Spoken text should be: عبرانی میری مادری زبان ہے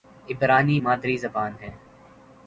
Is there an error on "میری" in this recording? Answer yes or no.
yes